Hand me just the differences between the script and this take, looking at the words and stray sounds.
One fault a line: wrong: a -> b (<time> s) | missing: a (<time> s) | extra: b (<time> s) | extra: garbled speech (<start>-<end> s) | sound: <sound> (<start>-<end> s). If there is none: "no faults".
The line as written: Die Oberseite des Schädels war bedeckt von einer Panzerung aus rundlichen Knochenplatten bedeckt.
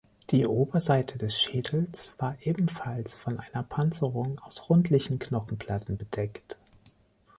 wrong: bedeckt -> ebenfalls (2.4 s)